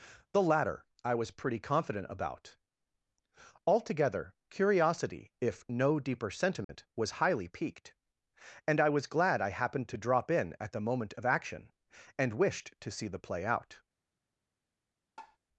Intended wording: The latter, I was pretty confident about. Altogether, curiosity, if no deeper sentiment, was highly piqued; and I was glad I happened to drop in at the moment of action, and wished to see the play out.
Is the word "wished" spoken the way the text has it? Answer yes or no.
yes